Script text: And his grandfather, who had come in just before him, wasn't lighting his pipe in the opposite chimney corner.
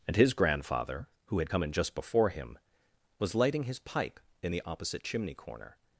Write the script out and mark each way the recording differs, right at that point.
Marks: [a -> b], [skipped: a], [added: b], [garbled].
And his grandfather, who had come in just before him, [wasn't -> was] lighting his pipe in the opposite chimney corner.